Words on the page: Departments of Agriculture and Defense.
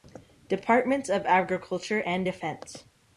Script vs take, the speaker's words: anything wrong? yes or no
no